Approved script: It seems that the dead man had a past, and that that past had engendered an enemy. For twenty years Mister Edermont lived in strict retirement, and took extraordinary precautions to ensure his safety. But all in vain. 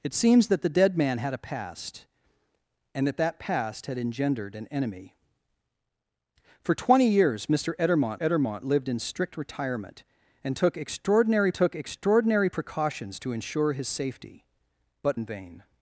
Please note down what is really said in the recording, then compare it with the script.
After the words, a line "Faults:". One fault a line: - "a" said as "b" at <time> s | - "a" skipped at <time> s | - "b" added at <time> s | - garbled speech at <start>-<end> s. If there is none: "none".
It seems that the dead man had a past, and that that past had engendered an enemy. For twenty years Mister Edermont Edermont lived in strict retirement, and took extraordinary took extraordinary precautions to ensure his safety. But in vain.
Faults:
- "Edermont" added at 8.2 s
- "took extraordinary" added at 11.5 s
- "all" skipped at 15.2 s